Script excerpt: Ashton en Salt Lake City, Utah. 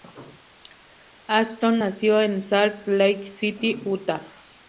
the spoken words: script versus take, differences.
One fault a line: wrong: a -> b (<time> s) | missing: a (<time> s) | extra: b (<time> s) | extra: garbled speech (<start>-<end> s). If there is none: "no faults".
extra: nació (1.8 s)